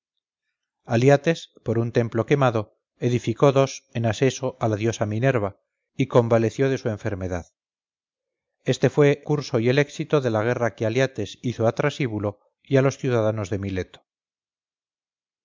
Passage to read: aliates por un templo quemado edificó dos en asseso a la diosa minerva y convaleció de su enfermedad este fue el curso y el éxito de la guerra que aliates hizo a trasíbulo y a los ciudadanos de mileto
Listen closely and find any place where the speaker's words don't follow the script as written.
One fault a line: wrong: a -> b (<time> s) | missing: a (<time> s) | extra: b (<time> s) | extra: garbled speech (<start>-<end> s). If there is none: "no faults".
missing: el (9.2 s)